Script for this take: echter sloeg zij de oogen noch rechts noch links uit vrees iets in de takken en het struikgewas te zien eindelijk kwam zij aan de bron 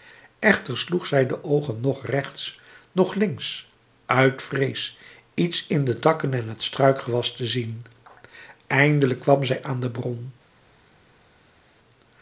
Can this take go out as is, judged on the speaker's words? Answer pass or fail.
pass